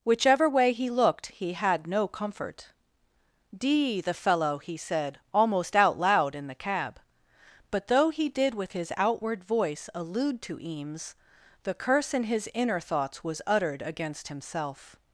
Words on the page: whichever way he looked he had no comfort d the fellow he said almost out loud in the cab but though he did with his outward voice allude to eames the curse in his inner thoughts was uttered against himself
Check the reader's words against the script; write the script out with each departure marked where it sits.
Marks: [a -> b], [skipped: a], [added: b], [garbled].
whichever way he looked he had no comfort d the fellow he said almost out loud in the cab but though he did with his outward voice allude to eames the curse in his inner thoughts was uttered against himself